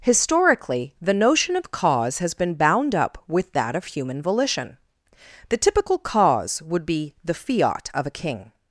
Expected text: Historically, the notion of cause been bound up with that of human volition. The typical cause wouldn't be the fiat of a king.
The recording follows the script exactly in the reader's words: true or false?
false